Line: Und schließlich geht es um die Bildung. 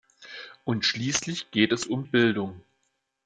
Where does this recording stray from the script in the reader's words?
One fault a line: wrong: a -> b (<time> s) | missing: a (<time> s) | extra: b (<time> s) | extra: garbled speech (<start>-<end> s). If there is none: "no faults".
missing: die (2.0 s)